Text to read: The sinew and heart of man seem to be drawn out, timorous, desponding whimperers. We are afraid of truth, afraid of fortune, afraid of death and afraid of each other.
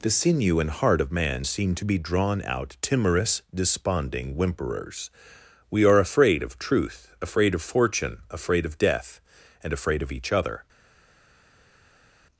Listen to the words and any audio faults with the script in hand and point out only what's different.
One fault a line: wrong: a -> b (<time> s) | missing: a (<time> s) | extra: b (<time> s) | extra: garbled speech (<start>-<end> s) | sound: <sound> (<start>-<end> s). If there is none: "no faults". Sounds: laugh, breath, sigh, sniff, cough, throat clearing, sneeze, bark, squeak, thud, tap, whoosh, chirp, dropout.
no faults